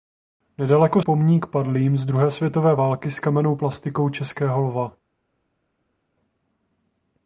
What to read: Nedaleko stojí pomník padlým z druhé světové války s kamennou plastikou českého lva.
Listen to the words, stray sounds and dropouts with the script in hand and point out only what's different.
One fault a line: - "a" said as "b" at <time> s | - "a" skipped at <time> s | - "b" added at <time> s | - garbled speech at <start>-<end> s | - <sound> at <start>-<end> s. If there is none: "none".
- "stojí" skipped at 1.0 s